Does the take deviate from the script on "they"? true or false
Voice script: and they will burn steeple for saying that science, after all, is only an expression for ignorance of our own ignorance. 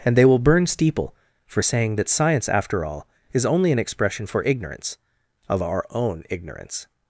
false